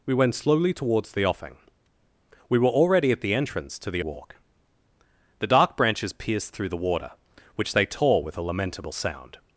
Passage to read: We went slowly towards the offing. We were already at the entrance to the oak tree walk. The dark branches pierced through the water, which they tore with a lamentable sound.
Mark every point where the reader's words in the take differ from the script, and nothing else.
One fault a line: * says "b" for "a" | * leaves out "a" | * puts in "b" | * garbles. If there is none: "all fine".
* leaves out "oak tree"